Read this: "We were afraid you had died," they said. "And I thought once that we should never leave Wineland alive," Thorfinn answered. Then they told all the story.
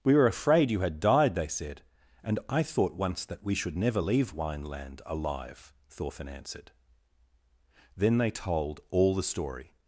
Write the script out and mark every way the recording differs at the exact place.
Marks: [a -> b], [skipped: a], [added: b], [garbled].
"We were afraid you had died," they said. "And I thought once that we should never leave Wineland alive," Thorfinn answered. Then they told all the story.